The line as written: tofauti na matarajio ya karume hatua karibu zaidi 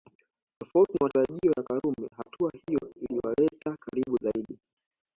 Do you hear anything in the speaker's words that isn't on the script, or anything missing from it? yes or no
yes